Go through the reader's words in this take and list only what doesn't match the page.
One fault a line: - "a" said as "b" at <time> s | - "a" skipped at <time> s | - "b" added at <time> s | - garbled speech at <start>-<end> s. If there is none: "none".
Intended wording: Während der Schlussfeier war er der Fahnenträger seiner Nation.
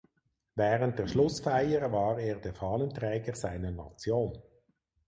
none